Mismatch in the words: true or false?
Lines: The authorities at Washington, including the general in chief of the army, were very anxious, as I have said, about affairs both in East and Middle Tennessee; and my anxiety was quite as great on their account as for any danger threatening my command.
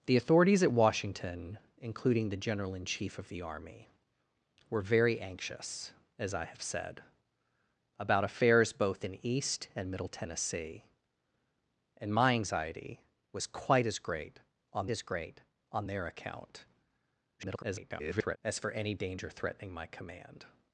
true